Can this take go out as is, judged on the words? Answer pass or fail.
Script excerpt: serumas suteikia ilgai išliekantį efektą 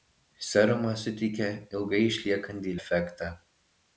pass